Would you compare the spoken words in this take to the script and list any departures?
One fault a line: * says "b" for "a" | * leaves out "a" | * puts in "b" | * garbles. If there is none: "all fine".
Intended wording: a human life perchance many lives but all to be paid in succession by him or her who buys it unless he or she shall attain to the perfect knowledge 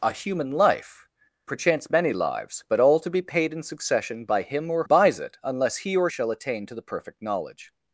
* leaves out "her who"
* leaves out "she"